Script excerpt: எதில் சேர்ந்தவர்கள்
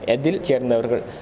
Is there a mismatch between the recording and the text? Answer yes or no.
no